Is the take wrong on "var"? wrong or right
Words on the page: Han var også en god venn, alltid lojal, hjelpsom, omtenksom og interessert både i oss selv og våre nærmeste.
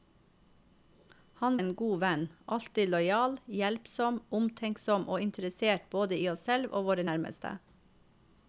wrong